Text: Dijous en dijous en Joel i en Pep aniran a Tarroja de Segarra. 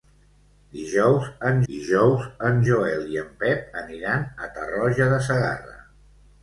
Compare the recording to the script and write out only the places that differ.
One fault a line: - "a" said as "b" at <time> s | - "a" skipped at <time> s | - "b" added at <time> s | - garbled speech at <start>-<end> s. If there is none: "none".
none